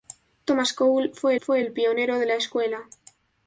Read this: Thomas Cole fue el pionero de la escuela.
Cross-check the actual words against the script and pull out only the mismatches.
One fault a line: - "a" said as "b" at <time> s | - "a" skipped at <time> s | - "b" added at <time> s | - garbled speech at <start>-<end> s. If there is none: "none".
- "fue" added at 1.4 s